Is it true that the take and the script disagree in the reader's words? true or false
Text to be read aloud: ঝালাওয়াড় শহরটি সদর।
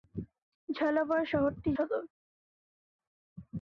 false